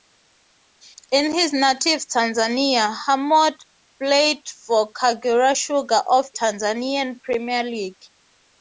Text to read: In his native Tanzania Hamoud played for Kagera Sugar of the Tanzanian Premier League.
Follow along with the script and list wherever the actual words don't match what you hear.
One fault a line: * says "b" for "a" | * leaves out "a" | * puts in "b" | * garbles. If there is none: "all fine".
* leaves out "the"